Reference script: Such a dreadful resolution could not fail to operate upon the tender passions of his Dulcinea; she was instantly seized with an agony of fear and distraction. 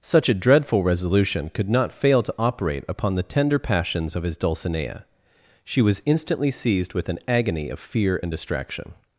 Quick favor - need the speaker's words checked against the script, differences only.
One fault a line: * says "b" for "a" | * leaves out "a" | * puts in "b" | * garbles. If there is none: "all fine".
all fine